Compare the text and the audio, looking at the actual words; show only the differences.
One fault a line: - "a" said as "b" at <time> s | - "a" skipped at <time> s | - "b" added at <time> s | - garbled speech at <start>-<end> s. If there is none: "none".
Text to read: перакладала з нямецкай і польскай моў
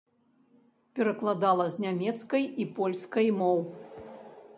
none